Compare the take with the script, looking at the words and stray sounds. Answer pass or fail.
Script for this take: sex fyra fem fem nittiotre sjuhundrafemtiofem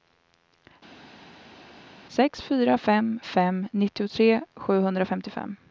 pass